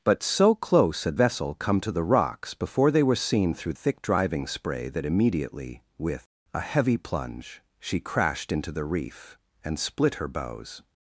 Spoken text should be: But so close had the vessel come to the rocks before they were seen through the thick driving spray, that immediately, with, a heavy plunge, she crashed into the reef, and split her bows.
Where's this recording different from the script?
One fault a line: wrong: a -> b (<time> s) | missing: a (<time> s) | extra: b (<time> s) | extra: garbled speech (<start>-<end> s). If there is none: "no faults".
missing: the (1.2 s)
missing: the (3.7 s)